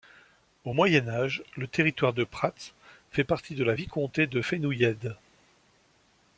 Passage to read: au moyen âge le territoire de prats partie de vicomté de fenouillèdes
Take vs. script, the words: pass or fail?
fail